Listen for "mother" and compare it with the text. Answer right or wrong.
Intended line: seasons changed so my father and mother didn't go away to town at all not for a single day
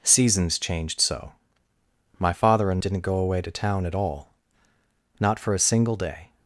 wrong